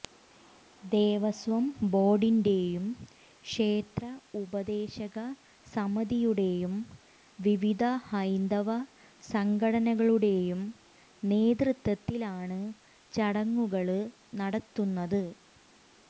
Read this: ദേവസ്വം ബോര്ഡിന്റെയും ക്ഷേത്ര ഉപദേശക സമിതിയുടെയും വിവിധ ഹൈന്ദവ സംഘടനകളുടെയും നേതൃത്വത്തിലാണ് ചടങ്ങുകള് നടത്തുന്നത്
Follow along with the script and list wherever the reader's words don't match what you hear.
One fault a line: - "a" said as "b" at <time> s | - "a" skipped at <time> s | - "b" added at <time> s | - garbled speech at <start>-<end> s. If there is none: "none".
none